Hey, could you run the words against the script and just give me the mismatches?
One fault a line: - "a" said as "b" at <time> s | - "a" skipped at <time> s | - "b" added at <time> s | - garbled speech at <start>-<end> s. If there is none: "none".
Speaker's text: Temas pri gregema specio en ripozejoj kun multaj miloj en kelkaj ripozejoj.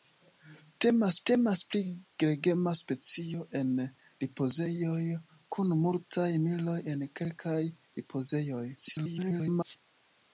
- "temas" added at 1.3 s
- garbled speech at 8.7-9.8 s